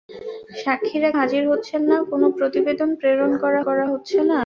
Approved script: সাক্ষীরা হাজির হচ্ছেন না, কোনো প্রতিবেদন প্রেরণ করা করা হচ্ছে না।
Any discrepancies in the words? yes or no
no